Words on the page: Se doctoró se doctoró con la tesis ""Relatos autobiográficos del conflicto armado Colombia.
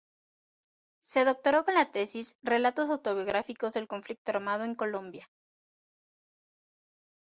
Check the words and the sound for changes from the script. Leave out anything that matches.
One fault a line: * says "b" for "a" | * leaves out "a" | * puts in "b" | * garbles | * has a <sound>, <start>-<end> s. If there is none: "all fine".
* leaves out "se doctoró"
* puts in "en"